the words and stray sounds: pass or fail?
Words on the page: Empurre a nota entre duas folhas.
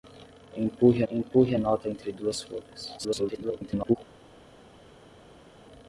fail